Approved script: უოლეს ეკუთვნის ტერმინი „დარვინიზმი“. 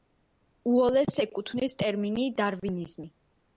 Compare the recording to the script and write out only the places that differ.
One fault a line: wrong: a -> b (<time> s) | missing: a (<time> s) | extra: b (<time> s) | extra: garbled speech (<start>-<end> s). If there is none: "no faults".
no faults